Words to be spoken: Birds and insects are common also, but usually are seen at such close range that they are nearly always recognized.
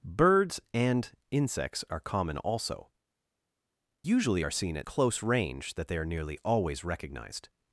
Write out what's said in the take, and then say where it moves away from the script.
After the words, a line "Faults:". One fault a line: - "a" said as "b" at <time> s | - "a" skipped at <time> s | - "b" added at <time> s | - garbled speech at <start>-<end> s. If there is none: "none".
Birds and insects are common also, usually are seen at close range that they are nearly always recognized.
Faults:
- "but" skipped at 2.9 s
- "such" skipped at 4.9 s